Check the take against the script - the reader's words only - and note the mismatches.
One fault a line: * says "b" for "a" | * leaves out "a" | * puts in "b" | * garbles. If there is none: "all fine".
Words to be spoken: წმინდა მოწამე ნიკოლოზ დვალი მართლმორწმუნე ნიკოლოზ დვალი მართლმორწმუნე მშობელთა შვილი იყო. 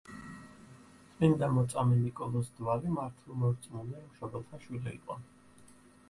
* leaves out "ნიკოლოზ დვალი მართლმორწმუნე"